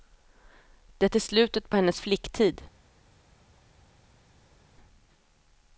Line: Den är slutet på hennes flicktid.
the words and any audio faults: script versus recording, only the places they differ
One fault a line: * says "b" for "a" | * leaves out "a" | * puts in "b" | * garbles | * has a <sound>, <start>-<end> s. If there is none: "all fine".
* says "Det" for "Den"